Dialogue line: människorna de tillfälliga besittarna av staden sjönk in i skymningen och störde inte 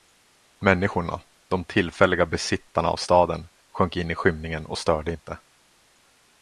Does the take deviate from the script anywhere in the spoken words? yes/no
no